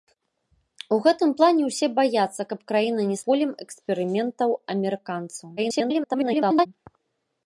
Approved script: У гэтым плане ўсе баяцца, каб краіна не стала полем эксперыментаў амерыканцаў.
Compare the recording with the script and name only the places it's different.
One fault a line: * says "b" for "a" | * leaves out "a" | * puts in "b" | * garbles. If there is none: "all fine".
* leaves out "стала"
* garbles